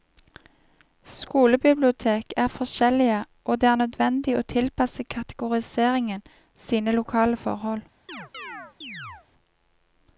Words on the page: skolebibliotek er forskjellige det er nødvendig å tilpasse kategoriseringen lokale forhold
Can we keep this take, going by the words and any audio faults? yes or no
no